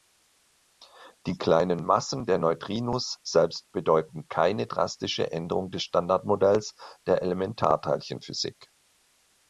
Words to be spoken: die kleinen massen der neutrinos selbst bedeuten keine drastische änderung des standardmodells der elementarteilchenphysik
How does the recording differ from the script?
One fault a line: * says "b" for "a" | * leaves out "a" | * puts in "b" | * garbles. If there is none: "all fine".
all fine